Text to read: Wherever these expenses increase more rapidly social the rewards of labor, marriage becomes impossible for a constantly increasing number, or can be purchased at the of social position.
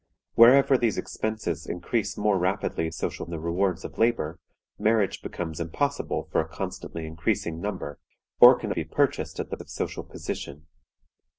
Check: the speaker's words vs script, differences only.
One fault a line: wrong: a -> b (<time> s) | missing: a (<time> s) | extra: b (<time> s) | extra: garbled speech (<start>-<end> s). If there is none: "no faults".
no faults